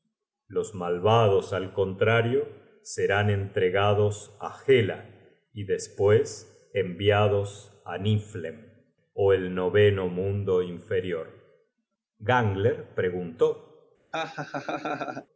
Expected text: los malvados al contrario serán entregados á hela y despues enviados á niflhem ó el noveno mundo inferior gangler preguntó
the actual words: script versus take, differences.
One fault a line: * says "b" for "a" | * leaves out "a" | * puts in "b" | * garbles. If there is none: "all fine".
all fine